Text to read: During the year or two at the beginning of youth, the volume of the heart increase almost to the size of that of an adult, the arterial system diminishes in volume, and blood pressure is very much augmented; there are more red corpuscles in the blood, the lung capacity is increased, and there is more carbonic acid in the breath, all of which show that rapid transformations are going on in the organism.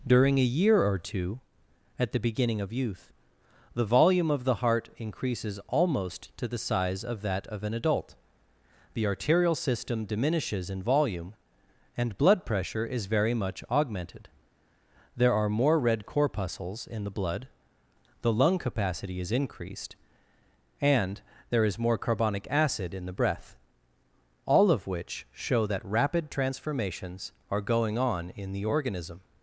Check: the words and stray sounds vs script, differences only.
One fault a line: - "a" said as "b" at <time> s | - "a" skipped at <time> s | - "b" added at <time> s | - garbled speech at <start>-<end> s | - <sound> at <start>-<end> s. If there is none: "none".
- "the" said as "a" at 0.4 s
- "increase" said as "increases" at 5.0 s